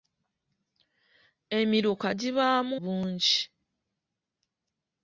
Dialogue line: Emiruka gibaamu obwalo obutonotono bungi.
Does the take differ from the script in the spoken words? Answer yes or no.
yes